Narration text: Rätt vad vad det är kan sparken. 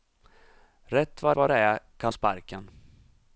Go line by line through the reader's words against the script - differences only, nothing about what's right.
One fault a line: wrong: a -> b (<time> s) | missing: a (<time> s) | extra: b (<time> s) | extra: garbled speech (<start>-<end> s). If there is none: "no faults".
no faults